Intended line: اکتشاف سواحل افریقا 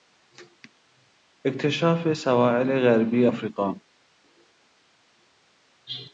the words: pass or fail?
fail